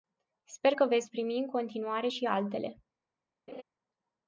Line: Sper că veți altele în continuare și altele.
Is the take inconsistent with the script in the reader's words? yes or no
yes